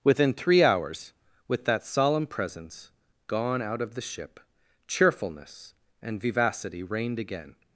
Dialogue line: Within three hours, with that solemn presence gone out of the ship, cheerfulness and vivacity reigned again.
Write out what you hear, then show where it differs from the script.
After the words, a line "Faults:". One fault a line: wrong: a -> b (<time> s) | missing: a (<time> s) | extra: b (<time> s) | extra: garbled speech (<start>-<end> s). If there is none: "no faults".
Within three hours, with that solemn presence gone out of the ship, cheerfulness and vivacity reigned again.
Faults:
no faults